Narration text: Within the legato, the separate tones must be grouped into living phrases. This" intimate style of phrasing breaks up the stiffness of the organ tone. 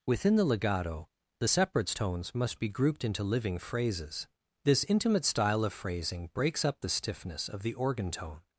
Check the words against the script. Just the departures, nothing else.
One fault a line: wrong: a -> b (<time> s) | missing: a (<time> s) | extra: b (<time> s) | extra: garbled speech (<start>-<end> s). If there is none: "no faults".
wrong: separate -> separates (1.4 s)